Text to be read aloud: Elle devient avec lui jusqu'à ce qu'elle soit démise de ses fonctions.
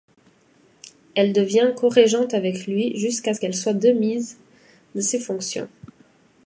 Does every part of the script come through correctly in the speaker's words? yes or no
no